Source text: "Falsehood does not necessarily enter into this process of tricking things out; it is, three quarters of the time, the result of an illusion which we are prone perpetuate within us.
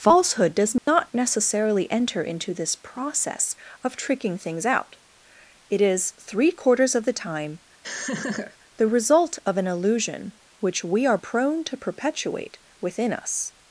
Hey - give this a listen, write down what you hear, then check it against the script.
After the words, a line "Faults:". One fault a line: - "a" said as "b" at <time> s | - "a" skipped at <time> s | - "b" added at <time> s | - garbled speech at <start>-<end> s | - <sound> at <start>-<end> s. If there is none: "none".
"Falsehood does not necessarily enter into this process of tricking things out; it is, three quarters of the time, the result of an illusion which we are prone to perpetuate within us.
Faults:
- dropout at 0.8-0.9 s
- laugh at 7.8-8.6 s
- "to" added at 11.7 s